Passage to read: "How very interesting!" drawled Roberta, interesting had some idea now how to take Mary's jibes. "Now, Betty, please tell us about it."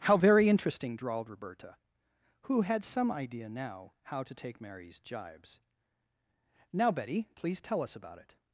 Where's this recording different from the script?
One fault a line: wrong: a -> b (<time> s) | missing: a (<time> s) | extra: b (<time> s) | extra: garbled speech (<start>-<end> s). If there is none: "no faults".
wrong: interesting -> who (2.4 s)